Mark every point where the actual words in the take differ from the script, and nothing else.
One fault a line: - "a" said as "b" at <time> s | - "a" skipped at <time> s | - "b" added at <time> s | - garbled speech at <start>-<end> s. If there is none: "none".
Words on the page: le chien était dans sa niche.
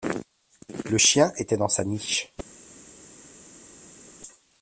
none